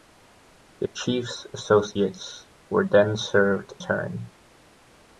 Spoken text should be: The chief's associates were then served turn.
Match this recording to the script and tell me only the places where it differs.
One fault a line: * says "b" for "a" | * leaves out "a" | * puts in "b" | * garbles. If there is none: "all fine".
all fine